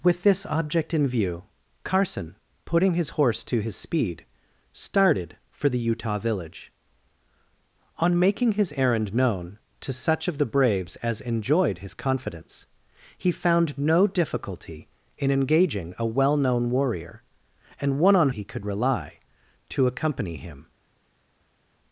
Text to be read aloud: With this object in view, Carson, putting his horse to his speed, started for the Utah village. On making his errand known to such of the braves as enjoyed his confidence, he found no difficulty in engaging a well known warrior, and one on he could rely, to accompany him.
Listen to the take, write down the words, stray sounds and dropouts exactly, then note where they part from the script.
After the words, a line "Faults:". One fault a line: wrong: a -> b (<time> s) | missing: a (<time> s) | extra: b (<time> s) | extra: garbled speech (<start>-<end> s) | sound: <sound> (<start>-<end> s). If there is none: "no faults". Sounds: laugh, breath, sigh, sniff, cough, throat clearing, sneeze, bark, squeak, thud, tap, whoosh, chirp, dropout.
With this object in view, Carson, putting his horse to his speed, started for the Utah village. On making his errand known to such of the braves as enjoyed his confidence, he found no difficulty in engaging a well known warrior, and one on he could rely, to accompany him.
Faults:
no faults